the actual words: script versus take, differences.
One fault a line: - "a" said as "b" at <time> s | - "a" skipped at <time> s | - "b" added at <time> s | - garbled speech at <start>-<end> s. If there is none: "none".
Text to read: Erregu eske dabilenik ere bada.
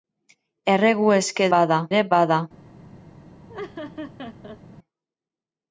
- "dabilenik" said as "bada" at 1.6 s